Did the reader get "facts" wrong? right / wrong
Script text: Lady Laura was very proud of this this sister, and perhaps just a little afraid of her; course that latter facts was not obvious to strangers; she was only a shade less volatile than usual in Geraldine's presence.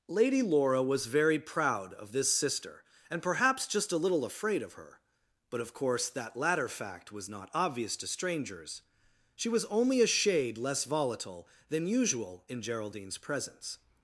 wrong